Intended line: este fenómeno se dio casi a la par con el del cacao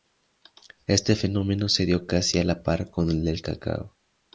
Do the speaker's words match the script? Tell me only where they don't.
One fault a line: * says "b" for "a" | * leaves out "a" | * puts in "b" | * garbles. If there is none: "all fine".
all fine